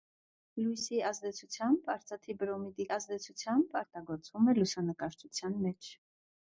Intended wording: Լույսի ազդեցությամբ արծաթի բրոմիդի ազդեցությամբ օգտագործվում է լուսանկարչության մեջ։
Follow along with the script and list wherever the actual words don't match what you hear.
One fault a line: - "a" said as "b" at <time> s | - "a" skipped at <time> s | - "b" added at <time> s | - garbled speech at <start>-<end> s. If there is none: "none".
none